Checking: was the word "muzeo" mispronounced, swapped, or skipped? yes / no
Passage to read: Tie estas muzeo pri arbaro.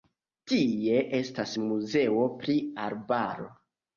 no